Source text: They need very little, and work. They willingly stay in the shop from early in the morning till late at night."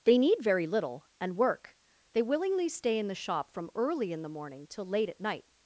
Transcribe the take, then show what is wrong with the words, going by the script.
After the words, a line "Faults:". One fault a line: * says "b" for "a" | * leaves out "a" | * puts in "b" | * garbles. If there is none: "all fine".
They need very little, and work. They willingly stay in the shop from early in the morning till late at night."
Faults:
all fine